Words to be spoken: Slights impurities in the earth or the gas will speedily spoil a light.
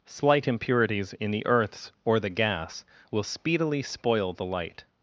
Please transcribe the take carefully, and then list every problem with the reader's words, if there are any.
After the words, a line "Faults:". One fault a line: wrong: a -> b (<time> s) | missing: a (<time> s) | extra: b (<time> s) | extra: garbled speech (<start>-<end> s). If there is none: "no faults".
Slight impurities in the earths or the gas will speedily spoil the light.
Faults:
wrong: Slights -> Slight (0.1 s)
wrong: earth -> earths (1.4 s)
wrong: a -> the (4.3 s)